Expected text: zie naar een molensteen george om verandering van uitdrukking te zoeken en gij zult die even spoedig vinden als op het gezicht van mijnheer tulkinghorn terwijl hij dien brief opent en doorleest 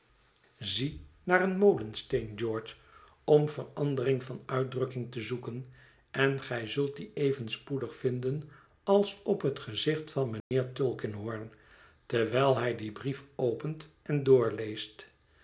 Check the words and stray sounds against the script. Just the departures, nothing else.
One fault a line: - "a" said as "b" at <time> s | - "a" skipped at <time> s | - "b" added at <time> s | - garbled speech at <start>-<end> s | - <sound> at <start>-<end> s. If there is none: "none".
- dropout at 10.4-10.5 s